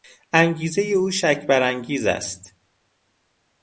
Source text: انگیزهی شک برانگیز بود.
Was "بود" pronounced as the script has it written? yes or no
no